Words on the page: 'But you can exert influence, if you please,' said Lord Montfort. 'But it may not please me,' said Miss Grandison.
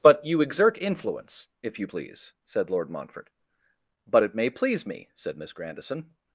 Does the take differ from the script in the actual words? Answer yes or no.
yes